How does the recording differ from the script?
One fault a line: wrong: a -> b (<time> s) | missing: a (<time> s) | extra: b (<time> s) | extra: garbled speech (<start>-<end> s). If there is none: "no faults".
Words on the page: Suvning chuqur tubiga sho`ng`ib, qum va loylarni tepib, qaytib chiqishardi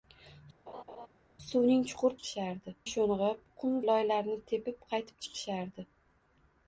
wrong: tubiga -> chiqishardi (2.2 s)
missing: va (3.7 s)